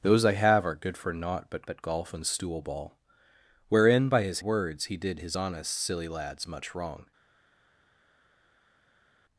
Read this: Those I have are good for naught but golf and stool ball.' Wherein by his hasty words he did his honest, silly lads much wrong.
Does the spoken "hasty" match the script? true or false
false